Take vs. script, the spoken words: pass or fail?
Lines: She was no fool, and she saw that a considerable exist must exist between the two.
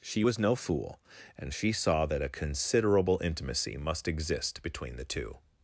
fail